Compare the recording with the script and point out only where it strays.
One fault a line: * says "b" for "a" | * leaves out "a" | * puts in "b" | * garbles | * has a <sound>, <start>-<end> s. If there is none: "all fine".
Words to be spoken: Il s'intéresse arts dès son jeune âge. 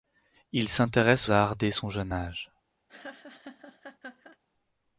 * has a laugh, 2.9-4.4 s